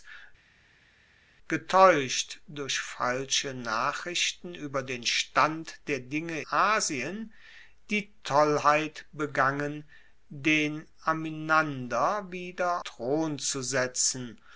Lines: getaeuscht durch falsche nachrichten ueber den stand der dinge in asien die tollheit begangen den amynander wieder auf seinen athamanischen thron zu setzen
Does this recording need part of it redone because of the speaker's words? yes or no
yes